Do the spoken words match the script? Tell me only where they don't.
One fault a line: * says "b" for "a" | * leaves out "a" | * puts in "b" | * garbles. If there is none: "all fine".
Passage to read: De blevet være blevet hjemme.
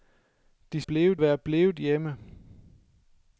all fine